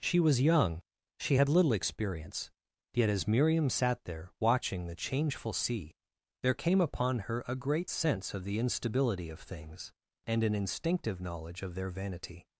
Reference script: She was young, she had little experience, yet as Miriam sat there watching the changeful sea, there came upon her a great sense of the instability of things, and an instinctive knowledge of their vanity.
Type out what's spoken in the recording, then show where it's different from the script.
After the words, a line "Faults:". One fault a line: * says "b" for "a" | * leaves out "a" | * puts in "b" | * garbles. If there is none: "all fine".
She was young, she had little experience, yet as Miriam sat there watching the changeful sea, there came upon her a great sense of the instability of things, and an instinctive knowledge of their vanity.
Faults:
all fine